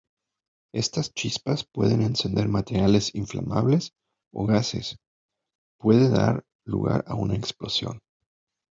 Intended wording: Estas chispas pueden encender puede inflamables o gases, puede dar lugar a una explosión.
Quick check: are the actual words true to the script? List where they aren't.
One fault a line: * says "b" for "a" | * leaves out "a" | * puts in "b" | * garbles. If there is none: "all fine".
* says "materiales" for "puede"